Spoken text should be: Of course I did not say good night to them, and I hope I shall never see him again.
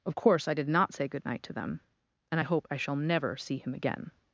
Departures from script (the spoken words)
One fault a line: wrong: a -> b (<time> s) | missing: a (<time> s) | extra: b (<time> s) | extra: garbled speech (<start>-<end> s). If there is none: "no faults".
no faults